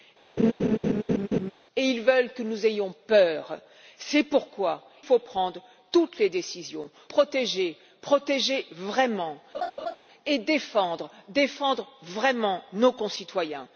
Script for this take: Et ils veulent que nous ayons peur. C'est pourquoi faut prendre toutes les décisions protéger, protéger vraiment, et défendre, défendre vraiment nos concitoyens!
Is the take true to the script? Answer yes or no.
yes